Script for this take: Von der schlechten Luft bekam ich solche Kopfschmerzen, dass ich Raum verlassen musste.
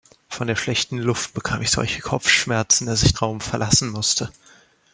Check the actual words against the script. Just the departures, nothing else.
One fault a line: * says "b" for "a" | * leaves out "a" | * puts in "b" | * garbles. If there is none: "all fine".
all fine